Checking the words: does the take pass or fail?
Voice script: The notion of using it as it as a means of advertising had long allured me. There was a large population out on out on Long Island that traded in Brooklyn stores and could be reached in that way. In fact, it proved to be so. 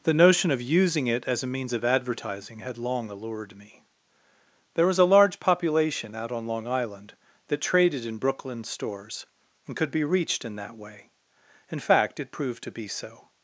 fail